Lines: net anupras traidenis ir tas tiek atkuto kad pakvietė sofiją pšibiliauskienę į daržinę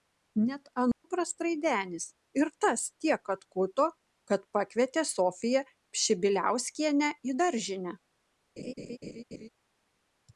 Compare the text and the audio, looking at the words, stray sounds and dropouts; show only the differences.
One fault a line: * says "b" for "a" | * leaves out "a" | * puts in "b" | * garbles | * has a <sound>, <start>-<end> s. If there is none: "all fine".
* has a dropout, 0.9-1.0 s
* has a laugh, 8.6-9.5 s